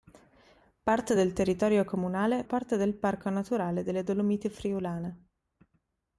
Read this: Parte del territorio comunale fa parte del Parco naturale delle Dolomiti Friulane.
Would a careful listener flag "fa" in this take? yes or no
yes